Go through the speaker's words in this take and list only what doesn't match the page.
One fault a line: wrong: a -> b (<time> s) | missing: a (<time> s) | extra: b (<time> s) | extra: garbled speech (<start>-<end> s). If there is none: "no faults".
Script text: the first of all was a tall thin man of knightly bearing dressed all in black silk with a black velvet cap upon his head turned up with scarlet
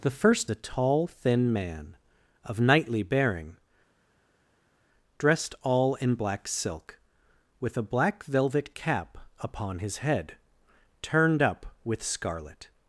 missing: of all was (0.5 s)